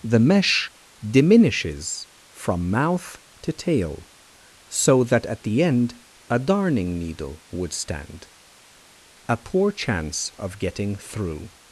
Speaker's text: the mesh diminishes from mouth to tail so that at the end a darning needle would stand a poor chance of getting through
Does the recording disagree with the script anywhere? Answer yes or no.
no